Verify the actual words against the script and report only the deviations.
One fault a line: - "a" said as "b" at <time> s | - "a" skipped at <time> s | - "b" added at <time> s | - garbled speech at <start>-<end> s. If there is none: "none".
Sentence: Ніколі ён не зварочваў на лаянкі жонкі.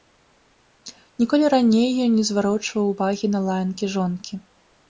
- "раней" added at 1.6 s
- "увагі" added at 3.0 s